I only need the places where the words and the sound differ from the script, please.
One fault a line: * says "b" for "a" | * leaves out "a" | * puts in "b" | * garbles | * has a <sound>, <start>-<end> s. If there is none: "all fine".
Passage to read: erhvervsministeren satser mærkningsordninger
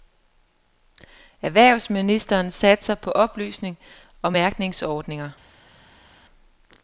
* puts in "på oplysning og"